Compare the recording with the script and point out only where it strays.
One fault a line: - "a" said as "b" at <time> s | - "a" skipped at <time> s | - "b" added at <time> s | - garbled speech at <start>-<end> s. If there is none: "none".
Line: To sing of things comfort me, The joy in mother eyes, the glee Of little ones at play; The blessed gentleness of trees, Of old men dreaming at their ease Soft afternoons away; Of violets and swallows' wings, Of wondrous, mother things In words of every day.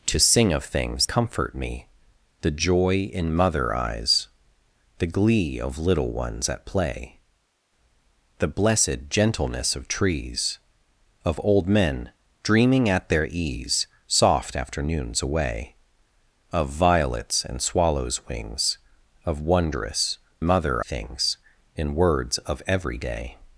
none